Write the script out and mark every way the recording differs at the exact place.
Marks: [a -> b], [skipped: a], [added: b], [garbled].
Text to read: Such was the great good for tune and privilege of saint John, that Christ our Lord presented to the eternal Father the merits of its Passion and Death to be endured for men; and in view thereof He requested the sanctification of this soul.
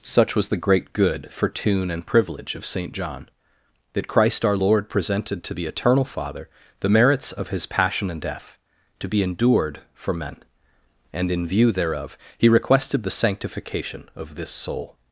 Such was the great good for tune and privilege of saint John, that Christ our Lord presented to the eternal Father the merits of [its -> his] Passion and Death to be endured for men; and in view thereof He requested the sanctification of this soul.